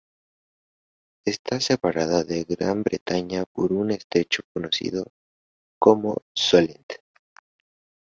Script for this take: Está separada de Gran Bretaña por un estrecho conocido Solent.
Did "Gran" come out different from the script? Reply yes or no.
no